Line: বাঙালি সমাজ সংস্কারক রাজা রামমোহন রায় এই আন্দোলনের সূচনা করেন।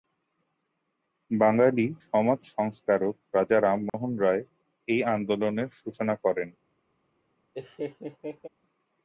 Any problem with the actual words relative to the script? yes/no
no